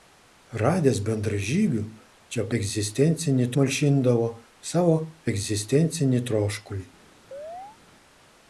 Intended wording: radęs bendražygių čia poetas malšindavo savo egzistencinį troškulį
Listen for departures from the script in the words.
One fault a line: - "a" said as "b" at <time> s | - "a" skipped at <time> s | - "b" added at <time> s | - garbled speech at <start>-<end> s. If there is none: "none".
- "poetas" said as "egzistencinį" at 2.6 s